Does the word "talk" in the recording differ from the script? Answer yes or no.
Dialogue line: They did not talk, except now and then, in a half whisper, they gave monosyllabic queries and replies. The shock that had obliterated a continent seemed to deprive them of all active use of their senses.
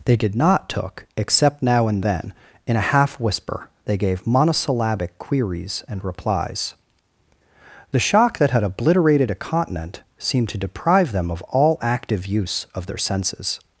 yes